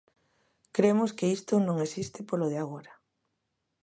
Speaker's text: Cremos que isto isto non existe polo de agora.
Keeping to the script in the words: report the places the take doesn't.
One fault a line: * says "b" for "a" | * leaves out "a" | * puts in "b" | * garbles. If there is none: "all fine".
* leaves out "isto"